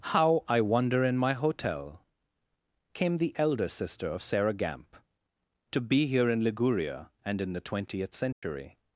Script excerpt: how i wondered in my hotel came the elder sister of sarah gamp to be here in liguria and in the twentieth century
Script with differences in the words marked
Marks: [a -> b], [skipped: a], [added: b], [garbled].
how i [wondered -> wonder] in my hotel came the elder sister of sarah gamp to be here in liguria and in the twentieth century